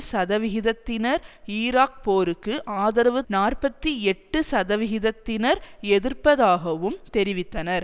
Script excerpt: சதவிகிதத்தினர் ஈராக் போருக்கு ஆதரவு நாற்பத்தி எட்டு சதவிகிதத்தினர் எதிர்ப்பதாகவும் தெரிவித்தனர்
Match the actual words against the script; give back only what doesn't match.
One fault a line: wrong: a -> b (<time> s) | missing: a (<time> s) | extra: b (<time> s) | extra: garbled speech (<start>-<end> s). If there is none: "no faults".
no faults